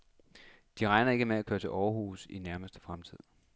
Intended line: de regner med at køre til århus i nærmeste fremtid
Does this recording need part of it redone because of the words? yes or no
yes